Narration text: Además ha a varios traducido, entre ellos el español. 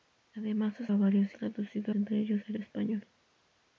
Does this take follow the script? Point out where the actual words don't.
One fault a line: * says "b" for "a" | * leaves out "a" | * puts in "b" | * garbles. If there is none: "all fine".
all fine